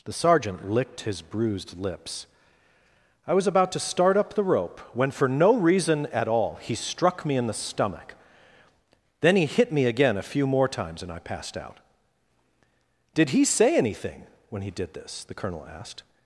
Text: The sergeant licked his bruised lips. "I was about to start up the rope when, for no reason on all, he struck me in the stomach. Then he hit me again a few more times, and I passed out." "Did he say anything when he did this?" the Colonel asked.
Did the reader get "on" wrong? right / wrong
wrong